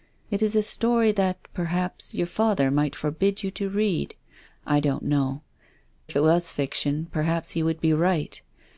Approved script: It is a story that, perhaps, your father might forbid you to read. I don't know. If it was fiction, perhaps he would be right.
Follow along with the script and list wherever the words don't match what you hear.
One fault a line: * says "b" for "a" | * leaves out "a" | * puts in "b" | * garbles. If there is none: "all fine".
all fine